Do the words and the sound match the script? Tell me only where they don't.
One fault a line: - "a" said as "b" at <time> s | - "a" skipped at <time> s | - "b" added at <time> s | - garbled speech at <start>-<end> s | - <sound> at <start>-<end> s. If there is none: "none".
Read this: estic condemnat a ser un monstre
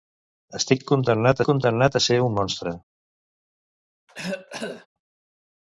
- "condemnat" added at 1.5 s
- cough at 4.1-4.9 s